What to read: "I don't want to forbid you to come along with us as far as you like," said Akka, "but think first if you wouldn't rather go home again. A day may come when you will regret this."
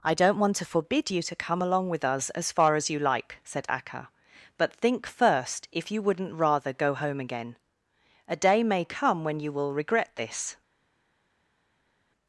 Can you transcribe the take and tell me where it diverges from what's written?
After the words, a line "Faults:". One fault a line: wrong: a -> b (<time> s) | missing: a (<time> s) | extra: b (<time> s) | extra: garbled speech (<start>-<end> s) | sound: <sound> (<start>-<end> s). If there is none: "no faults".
"I don't want to forbid you to come along with us as far as you like," said Akka, "but think first if you wouldn't rather go home again. A day may come when you will regret this."
Faults:
no faults